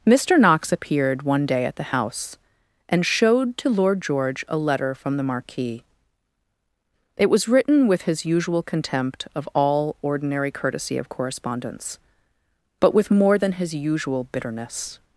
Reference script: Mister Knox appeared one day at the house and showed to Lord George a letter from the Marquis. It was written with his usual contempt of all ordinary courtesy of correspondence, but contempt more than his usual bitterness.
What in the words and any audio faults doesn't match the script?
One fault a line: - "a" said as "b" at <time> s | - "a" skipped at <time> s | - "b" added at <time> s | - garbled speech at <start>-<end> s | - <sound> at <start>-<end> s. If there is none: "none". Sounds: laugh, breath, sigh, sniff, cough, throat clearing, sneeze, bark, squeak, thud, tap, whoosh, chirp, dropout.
- "contempt" said as "with" at 12.9 s